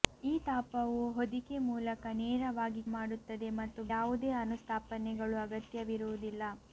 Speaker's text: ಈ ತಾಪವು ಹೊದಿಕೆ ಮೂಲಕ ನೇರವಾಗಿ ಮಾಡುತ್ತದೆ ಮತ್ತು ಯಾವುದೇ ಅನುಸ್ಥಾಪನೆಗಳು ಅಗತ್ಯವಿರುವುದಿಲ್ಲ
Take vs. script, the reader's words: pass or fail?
pass